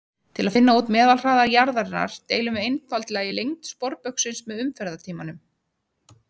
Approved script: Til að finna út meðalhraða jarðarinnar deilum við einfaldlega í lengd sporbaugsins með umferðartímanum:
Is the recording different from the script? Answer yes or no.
no